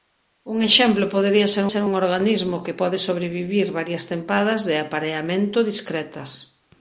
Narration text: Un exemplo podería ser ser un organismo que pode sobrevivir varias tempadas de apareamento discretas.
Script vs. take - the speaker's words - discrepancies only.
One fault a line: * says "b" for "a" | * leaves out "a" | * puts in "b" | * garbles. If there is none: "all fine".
all fine